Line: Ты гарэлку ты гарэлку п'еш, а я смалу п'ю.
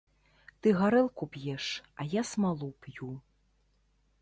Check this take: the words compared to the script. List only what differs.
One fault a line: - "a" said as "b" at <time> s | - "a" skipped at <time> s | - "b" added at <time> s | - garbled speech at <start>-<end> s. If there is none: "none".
- "ты гарэлку" skipped at 1.3 s